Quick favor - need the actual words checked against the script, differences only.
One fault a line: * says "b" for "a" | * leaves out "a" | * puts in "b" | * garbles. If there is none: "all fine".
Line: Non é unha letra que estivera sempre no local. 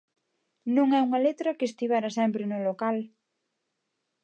all fine